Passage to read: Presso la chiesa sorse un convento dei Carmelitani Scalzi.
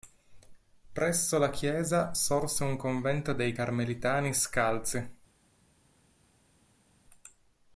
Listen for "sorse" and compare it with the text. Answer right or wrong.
right